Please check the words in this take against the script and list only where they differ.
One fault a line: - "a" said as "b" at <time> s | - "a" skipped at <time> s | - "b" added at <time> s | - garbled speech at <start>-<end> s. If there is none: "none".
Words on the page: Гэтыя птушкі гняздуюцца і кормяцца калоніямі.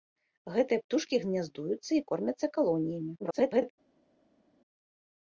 - garbled speech at 3.2-3.7 s